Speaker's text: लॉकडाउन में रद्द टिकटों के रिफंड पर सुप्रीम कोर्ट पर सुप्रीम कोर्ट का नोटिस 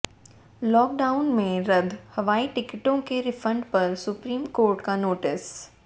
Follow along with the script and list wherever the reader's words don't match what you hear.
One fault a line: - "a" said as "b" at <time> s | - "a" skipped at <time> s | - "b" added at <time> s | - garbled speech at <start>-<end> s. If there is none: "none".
- "हवाई" added at 2.1 s
- "पर सुप्रीम कोर्ट" skipped at 4.8 s